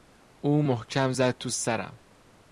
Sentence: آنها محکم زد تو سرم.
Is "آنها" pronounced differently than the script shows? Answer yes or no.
yes